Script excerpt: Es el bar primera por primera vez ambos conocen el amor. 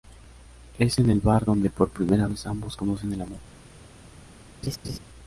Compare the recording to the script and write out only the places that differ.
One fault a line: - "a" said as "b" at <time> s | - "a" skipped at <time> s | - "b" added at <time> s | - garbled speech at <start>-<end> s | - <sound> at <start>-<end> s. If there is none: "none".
- "en" added at 1.0 s
- "primera" said as "donde" at 1.4 s
- laugh at 4.6-5.0 s